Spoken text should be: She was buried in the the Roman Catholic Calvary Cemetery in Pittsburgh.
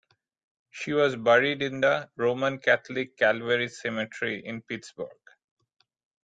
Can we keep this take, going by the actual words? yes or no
no